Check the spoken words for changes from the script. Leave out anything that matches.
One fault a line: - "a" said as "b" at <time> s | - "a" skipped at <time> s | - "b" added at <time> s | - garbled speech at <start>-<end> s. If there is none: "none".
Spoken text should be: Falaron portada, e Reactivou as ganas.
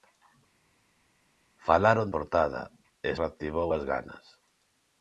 none